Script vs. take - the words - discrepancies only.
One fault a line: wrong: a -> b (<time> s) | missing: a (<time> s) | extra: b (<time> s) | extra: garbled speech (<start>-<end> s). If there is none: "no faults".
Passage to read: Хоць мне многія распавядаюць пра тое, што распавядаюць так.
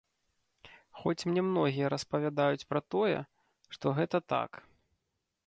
wrong: распавядаюць -> гэта (4.0 s)